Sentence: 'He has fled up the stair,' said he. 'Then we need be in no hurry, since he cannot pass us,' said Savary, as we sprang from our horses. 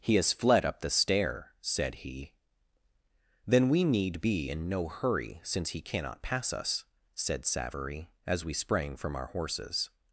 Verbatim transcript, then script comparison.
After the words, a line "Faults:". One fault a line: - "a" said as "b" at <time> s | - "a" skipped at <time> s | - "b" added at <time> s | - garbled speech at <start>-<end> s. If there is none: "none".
'He has fled up the stair,' said he. 'Then we need be in no hurry, since he cannot pass us,' said Savary, as we sprang from our horses.
Faults:
none